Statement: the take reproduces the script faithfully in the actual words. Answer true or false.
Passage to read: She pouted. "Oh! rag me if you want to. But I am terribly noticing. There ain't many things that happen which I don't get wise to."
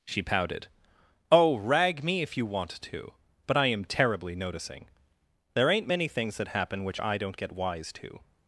true